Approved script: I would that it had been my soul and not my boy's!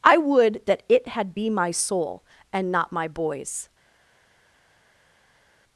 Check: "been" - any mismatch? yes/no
yes